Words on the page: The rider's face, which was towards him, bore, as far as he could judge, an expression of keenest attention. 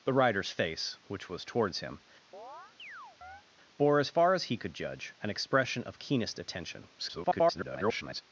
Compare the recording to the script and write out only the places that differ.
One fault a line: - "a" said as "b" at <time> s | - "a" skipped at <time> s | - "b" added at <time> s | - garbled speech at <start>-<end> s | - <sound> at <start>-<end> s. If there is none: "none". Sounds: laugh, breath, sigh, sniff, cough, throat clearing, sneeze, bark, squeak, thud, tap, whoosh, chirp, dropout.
- chirp at 2.3-3.4 s
- garbled speech at 7.0-8.2 s